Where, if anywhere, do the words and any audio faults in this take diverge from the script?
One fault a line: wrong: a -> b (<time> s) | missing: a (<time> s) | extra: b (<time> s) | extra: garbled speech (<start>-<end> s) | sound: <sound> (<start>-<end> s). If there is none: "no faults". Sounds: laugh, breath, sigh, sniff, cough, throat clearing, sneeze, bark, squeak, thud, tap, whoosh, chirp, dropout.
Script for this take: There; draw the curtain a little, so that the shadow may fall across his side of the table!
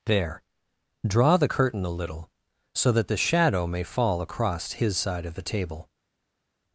no faults